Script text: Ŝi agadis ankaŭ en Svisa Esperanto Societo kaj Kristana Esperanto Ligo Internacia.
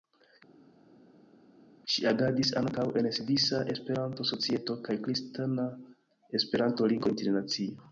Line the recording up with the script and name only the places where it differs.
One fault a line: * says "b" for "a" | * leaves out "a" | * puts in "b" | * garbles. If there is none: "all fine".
all fine